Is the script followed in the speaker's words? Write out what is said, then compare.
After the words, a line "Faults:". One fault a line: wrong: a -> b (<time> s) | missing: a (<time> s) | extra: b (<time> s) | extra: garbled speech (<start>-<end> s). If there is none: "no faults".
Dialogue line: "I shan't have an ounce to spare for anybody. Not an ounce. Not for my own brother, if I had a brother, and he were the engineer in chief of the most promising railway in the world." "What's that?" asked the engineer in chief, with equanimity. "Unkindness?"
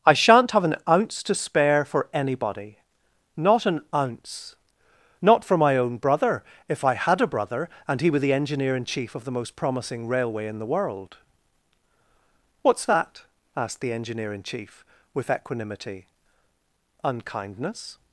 "I shan't have an ounce to spare for anybody. Not an ounce. Not for my own brother, if I had a brother, and he were the engineer in chief of the most promising railway in the world." "What's that?" asked the engineer in chief, with equanimity. "Unkindness?"
Faults:
no faults